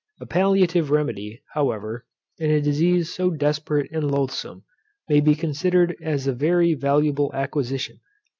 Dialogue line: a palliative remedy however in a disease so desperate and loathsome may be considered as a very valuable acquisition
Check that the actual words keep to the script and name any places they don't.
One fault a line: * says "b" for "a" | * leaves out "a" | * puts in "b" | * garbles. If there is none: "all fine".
all fine